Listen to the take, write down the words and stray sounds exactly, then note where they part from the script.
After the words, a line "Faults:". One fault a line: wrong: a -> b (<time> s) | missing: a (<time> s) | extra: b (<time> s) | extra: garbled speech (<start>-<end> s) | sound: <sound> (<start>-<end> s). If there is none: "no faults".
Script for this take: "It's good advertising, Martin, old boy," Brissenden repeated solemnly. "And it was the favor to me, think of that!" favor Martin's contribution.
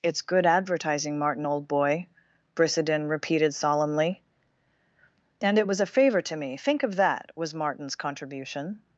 "It's good advertising, Martin, old boy," Brissenden repeated solemnly. "And it was a favor to me, think of that!" was Martin's contribution.
Faults:
wrong: the -> a (5.8 s)
wrong: favor -> was (7.3 s)